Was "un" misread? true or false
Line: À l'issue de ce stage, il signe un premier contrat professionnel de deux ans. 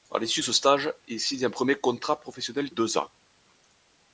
false